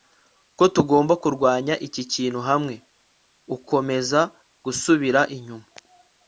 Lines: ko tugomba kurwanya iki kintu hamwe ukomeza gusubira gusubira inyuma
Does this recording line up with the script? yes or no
no